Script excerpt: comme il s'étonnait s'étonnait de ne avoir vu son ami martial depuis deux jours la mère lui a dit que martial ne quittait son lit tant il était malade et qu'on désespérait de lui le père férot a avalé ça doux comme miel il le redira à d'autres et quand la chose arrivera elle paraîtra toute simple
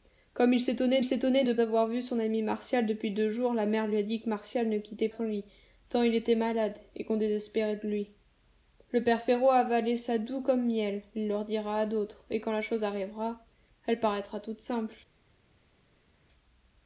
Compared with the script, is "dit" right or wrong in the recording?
right